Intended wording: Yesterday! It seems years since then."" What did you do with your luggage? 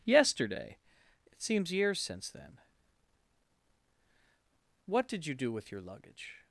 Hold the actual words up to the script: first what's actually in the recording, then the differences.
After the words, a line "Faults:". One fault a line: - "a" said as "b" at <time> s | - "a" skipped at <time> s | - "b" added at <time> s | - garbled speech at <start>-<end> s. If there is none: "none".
Yesterday! It seems years since then."" What did you do with your luggage?
Faults:
none